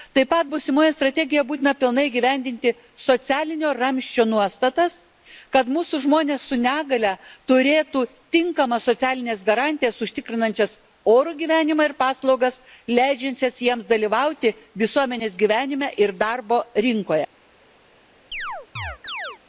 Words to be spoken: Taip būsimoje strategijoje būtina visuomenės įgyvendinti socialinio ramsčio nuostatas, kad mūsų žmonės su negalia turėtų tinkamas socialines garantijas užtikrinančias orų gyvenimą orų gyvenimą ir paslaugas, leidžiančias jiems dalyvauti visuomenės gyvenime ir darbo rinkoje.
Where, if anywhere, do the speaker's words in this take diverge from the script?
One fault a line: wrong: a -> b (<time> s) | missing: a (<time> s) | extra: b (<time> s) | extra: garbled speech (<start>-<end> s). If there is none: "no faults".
extra: pat (0.3 s)
wrong: visuomenės -> pilnai (1.8 s)
missing: orų gyvenimą (11.9 s)